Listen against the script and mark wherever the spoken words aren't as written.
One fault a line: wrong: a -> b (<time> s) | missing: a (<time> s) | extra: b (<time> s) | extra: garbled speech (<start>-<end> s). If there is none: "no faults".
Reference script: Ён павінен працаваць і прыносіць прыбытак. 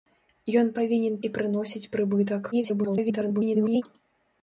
missing: працаваць (1.2 s)
extra: garbled speech (2.5-3.8 s)